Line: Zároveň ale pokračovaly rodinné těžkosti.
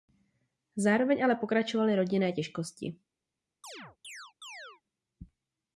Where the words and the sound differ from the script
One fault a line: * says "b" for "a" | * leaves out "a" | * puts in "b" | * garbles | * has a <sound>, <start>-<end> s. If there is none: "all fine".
* has a chirp, 3.6-4.8 s